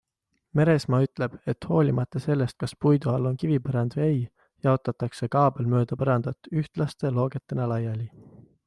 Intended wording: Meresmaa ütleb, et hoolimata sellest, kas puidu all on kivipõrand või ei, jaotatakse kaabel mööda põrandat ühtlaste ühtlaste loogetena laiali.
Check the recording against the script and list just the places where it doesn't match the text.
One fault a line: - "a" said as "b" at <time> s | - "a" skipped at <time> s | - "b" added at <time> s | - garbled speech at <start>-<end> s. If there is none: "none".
- "ühtlaste" skipped at 7.1 s